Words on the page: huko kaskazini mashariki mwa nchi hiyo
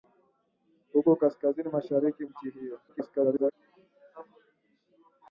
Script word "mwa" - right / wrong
wrong